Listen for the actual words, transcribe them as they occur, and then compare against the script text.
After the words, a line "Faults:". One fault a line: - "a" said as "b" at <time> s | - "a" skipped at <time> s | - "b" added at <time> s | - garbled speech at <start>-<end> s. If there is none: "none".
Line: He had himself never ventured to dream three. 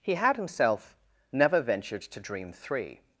He had himself never ventured to dream three.
Faults:
none